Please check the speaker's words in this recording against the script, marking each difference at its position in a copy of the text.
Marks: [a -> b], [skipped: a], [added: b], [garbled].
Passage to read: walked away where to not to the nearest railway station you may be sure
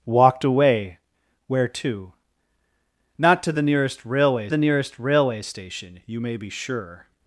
walked away where to not to the nearest railway [added: the nearest railway] station you may be sure